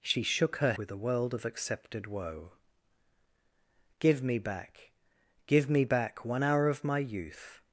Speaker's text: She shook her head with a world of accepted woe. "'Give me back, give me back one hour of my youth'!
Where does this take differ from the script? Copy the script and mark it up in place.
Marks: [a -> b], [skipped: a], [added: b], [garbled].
She shook her [skipped: head] with a world of accepted woe. "'Give me back, give me back one hour of my youth'!